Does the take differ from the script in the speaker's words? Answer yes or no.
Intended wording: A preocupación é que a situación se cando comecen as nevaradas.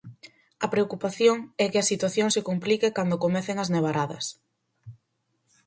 yes